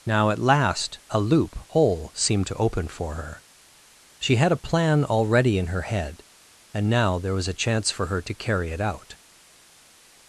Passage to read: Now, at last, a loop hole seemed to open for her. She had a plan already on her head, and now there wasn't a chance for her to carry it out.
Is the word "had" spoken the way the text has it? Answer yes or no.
yes